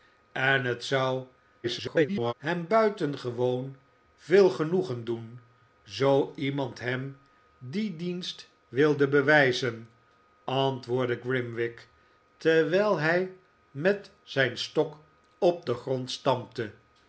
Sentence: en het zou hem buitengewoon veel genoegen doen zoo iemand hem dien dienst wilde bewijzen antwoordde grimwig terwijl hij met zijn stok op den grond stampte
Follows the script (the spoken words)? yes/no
no